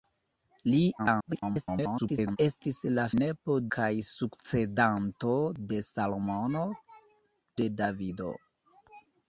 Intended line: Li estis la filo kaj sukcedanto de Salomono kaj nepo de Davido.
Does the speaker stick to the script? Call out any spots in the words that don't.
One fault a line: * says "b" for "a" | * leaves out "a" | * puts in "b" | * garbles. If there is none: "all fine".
* garbles
* says "nepo" for "filo"
* leaves out "kaj nepo"